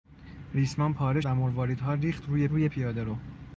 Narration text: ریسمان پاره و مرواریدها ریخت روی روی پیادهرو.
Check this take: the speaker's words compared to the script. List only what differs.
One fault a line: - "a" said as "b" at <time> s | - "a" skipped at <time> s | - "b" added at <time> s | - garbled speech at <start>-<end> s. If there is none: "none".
none